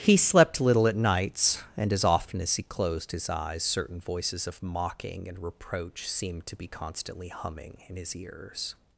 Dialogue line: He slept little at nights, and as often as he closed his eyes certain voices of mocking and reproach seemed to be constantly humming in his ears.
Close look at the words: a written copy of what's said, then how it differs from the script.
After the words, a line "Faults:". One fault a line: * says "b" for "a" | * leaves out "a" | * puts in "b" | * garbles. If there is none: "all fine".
He slept little at nights, and as often as he closed his eyes certain voices of mocking and reproach seemed to be constantly humming in his ears.
Faults:
all fine